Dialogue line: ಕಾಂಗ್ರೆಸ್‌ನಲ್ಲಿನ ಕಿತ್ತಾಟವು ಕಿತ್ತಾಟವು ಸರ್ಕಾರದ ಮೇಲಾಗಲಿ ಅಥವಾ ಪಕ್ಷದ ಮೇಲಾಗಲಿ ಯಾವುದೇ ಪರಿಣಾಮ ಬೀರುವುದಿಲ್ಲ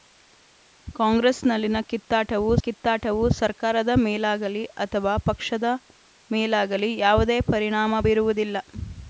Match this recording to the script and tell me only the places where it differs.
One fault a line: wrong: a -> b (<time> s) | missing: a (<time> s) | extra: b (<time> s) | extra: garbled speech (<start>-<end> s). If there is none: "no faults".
no faults